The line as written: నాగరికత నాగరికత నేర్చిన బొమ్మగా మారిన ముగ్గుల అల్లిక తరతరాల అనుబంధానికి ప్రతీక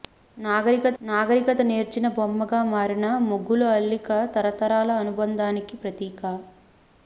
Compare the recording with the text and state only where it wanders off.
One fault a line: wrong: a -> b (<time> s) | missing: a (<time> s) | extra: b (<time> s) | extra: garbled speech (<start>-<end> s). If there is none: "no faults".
no faults